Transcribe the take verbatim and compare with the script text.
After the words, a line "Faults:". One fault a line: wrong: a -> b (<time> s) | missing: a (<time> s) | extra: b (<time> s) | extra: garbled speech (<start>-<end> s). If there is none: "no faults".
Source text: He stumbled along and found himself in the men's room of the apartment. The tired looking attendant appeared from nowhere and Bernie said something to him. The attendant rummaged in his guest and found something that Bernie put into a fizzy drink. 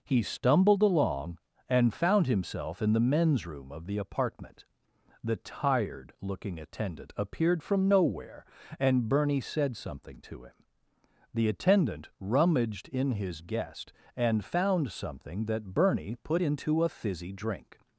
He stumbled along and found himself in the men's room of the apartment. The tired looking attendant appeared from nowhere and Bernie said something to him. The attendant rummaged in his guest and found something that Bernie put into a fizzy drink.
Faults:
no faults